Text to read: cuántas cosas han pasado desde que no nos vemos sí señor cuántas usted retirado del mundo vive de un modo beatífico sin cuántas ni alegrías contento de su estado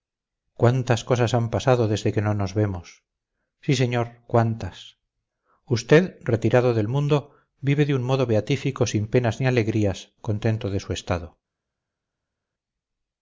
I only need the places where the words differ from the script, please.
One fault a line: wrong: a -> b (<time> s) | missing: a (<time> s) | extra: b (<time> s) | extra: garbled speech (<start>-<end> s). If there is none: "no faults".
wrong: cuántas -> penas (9.1 s)